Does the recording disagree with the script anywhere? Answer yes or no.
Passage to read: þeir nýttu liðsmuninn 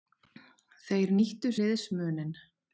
no